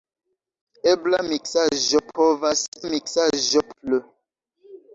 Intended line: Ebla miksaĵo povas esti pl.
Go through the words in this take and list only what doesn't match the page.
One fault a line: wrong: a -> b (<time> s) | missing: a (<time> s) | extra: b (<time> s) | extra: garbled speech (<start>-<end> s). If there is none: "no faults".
wrong: esti -> miksaĵo (2.9 s)